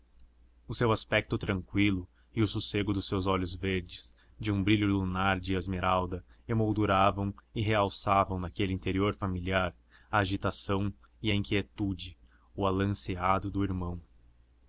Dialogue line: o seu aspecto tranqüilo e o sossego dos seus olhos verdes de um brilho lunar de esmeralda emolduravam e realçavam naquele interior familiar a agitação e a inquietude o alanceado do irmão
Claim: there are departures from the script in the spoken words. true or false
false